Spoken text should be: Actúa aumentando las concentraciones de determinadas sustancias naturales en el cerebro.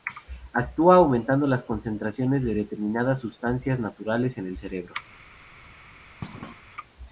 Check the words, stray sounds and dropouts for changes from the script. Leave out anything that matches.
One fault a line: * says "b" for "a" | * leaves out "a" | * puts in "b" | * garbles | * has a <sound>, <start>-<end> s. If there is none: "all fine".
* has a thud, 6.2-6.6 s